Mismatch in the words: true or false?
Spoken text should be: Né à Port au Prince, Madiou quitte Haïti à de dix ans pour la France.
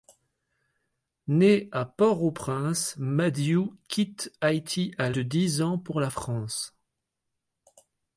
false